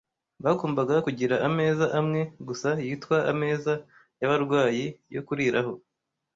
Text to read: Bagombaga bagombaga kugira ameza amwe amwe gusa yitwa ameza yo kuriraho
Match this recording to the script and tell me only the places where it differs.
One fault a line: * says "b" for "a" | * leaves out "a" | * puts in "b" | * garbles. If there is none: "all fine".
* leaves out "bagombaga"
* leaves out "amwe"
* puts in "y'abarwayi"